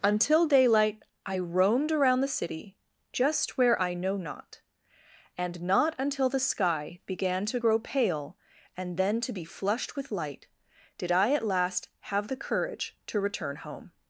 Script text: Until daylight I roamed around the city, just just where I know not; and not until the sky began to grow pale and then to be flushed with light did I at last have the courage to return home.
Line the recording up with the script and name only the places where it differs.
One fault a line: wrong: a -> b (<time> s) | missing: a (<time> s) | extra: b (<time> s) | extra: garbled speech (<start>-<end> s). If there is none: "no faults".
missing: just (3.6 s)